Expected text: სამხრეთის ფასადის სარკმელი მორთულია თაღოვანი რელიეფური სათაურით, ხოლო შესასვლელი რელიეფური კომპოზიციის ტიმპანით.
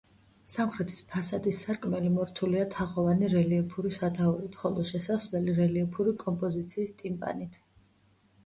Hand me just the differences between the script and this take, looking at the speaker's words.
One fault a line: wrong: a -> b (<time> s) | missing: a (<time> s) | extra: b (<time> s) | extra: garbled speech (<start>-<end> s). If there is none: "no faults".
no faults